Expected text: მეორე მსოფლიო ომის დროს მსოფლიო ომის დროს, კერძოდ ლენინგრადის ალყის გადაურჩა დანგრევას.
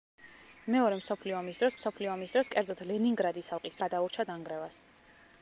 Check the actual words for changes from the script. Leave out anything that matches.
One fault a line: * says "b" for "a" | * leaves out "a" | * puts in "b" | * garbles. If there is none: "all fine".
all fine